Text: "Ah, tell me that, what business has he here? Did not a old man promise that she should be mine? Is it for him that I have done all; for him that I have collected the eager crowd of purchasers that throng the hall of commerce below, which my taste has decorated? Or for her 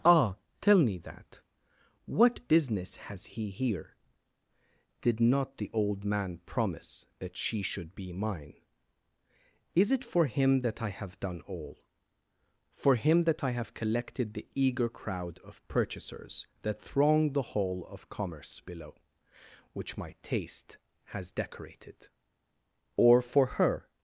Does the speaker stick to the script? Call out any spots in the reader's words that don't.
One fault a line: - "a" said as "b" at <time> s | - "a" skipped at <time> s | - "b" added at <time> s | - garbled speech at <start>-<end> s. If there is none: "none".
- "a" said as "the" at 5.6 s